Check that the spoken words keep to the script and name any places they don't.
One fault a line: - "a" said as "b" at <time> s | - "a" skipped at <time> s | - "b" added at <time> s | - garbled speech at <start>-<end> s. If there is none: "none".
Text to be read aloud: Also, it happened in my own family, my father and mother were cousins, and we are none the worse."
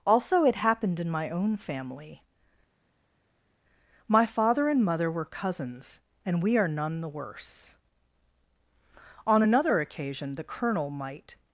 - "On another occasion the Colonel might" added at 9.3 s